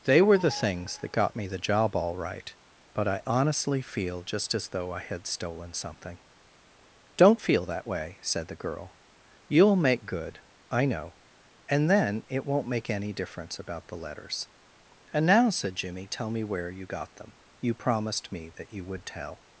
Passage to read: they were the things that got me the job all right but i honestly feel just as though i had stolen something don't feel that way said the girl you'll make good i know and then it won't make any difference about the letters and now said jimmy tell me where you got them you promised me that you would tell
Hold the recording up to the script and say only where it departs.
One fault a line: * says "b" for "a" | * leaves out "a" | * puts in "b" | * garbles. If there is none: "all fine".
all fine